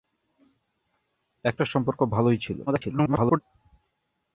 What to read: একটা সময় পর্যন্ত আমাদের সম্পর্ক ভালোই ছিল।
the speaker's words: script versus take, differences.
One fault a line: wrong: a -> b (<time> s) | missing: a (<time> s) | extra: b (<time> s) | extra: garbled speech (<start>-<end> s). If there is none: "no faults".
missing: সময় পর্যন্ত আমাদের (1.6 s)
extra: garbled speech (2.7-3.4 s)